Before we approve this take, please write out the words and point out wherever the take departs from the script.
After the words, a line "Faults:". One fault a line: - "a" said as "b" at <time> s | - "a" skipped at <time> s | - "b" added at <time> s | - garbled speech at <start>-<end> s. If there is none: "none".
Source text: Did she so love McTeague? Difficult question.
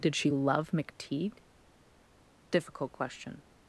Did she love McTeague? Difficult question.
Faults:
- "so" skipped at 0.3 s